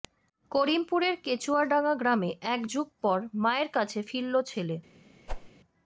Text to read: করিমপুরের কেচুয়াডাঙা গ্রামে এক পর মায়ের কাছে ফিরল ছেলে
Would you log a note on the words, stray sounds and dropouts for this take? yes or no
yes